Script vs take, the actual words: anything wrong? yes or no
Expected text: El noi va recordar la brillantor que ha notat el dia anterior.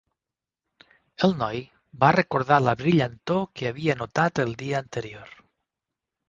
yes